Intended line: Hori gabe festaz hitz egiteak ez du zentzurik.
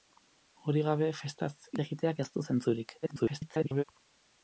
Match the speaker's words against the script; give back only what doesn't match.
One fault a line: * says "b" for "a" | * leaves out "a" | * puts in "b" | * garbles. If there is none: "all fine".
* leaves out "hitz"
* garbles